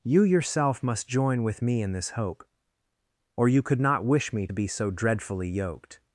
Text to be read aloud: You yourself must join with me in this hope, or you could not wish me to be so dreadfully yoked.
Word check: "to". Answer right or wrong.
wrong